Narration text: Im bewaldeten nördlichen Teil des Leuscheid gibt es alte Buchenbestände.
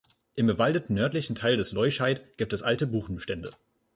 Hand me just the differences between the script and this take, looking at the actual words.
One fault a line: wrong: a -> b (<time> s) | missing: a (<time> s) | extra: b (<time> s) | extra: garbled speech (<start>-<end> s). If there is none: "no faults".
no faults